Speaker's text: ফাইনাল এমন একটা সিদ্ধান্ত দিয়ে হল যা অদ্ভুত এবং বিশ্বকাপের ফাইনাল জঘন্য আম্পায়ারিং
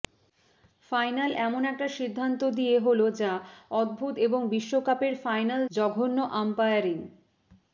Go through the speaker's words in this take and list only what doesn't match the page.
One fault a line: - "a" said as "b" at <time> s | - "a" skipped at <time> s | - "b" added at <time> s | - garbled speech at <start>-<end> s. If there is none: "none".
none